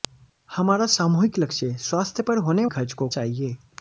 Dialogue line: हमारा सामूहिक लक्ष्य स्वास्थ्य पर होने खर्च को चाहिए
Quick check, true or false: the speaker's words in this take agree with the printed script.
true